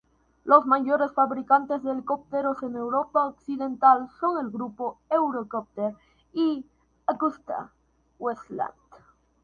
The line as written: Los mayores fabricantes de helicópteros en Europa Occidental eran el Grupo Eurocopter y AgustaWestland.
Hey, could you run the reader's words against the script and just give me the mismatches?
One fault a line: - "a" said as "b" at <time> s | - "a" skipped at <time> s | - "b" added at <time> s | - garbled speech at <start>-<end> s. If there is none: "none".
- "eran" said as "son" at 4.2 s